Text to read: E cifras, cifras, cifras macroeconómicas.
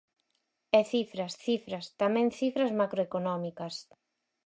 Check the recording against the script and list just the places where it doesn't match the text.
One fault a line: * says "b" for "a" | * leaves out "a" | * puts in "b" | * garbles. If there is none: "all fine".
* puts in "tamén"